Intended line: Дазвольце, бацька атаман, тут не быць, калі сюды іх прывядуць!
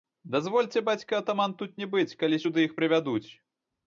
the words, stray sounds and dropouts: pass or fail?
pass